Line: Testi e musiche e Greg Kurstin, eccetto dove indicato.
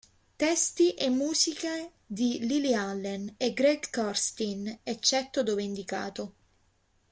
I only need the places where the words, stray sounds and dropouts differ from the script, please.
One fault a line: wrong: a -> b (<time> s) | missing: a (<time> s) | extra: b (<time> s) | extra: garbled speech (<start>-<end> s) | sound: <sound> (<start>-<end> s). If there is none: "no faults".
extra: di Lily Allen (2.1 s)